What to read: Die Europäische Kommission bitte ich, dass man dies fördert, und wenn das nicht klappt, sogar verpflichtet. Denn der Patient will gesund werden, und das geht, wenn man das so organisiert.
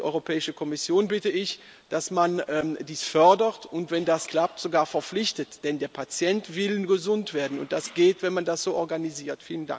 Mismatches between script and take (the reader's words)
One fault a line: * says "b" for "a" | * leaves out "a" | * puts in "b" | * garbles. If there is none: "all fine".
* leaves out "nicht"